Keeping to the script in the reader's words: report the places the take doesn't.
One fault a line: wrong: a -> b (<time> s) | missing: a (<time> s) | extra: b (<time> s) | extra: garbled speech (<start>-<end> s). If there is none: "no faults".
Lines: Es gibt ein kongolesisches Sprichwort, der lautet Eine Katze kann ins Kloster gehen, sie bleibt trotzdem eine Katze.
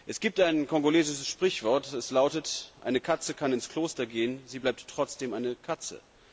wrong: der -> das (1.9 s)